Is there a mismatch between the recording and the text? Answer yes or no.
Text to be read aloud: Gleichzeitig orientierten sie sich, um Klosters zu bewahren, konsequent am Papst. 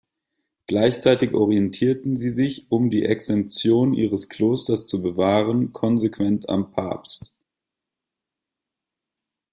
yes